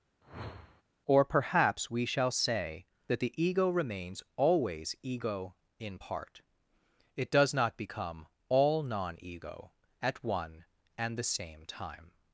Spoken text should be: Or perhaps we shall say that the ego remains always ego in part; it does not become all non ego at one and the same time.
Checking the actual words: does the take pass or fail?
pass